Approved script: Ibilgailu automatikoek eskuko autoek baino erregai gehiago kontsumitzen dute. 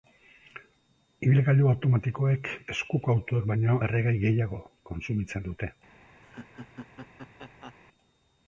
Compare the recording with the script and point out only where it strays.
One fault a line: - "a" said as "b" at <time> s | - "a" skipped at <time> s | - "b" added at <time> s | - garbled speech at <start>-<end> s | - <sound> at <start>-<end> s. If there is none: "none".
- laugh at 6.2-7.7 s